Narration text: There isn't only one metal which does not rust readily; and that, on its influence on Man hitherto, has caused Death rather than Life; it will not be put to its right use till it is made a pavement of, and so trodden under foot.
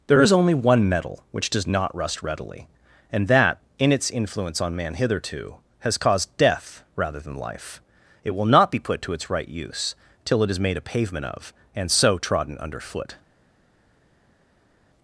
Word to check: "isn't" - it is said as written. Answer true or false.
false